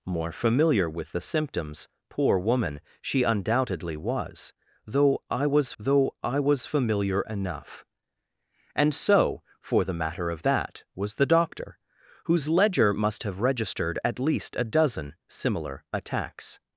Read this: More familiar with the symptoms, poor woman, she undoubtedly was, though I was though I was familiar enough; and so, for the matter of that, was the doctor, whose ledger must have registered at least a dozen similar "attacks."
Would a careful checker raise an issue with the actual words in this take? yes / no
no